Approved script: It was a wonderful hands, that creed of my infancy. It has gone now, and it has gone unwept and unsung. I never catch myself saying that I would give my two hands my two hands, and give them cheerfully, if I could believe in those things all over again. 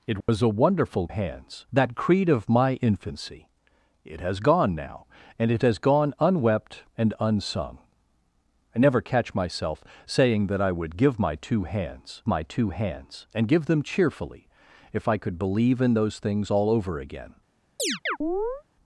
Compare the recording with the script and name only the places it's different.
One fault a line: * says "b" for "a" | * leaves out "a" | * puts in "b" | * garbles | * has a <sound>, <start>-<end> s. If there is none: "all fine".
* has a dropout, 0.2-0.3 s
* has a chirp, 17.8-18.6 s